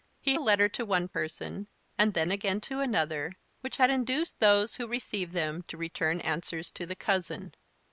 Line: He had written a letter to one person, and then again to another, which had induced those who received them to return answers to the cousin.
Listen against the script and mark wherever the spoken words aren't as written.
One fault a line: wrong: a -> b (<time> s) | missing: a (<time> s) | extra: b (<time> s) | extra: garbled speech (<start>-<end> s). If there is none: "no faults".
missing: had written (0.4 s)